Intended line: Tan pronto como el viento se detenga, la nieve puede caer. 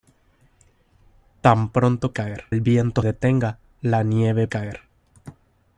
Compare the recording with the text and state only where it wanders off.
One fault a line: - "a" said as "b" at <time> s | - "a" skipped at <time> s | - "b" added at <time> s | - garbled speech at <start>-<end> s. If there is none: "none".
- "como" said as "caer" at 2.1 s
- "se" skipped at 3.0 s
- "puede" skipped at 4.5 s